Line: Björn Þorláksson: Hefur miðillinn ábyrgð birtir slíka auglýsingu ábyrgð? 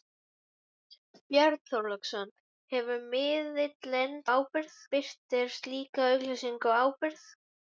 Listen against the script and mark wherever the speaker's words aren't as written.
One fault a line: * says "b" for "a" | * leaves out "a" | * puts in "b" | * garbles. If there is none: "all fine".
all fine